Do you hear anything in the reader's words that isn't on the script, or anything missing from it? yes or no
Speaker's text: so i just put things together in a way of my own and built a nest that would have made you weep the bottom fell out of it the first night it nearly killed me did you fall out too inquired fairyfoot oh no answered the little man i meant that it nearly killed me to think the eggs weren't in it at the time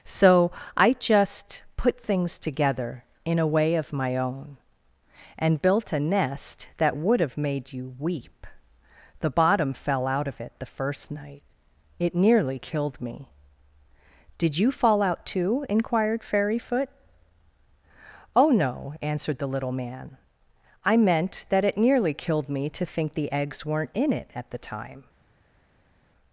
no